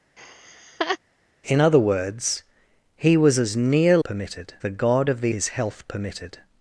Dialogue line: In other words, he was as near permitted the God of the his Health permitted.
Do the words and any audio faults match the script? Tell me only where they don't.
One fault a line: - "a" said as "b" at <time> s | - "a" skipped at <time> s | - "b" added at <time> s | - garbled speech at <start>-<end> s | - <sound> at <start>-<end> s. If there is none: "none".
- laugh at 0.2-1.0 s